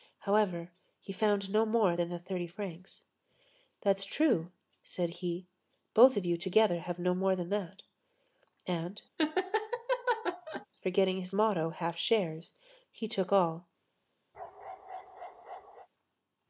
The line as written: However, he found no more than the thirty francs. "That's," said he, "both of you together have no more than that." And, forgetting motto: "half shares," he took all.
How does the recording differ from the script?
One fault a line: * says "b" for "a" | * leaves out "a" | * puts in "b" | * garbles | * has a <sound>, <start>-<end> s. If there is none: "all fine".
* puts in "true"
* has a laugh, 9.2-10.7 s
* puts in "his"
* has a bark, 14.3-15.9 s